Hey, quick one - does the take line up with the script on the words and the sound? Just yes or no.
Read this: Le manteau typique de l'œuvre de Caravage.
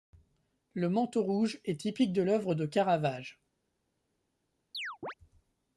no